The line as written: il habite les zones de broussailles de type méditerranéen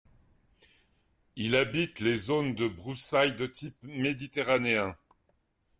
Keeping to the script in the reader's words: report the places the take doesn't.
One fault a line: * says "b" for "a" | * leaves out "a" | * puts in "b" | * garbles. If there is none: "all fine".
all fine